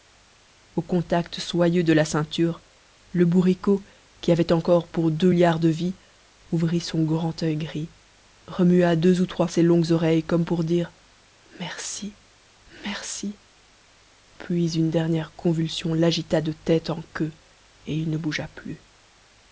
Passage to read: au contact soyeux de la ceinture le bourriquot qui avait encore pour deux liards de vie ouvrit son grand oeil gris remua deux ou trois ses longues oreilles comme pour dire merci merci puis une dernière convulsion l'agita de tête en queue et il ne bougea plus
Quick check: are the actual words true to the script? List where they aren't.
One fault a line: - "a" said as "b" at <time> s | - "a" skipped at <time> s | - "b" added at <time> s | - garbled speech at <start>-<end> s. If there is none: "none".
none